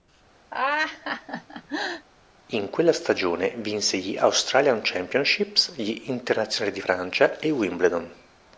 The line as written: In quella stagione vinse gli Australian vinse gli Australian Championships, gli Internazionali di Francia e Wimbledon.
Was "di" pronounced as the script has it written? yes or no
yes